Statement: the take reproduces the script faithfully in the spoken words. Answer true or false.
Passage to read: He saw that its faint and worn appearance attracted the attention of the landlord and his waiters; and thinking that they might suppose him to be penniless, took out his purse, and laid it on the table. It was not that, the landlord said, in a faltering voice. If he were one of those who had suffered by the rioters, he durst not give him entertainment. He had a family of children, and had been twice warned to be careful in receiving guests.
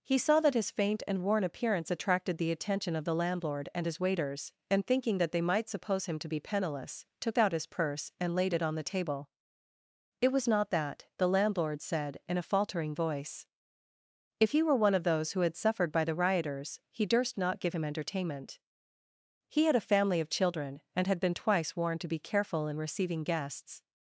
false